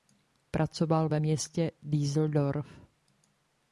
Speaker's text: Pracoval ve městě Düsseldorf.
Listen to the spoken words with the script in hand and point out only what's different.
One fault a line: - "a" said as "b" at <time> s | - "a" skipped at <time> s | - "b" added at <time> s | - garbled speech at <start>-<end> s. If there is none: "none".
none